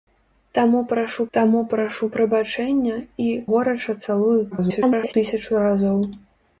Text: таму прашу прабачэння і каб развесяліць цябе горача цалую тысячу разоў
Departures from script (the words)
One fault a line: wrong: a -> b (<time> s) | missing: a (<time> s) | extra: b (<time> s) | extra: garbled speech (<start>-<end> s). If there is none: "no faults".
extra: таму прашу (1.4 s)
missing: каб развесяліць цябе (3.3 s)
extra: garbled speech (4.5-5.1 s)